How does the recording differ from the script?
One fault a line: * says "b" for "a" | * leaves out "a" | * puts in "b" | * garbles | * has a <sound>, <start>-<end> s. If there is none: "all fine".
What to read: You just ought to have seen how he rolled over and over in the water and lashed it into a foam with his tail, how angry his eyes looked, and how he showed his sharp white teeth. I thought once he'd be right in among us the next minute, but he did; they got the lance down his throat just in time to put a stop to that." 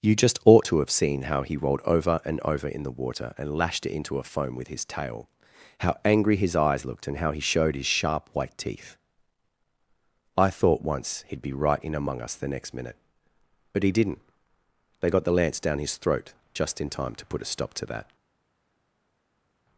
* says "didn't" for "did"